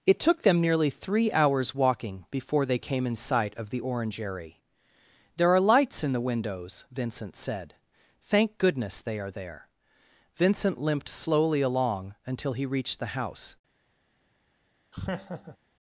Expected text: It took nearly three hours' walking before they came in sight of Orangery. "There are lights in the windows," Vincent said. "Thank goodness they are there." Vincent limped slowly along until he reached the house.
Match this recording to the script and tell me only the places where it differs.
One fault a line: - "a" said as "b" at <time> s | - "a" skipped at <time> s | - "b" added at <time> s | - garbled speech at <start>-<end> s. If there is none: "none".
- "them" added at 0.4 s
- "the" added at 3.7 s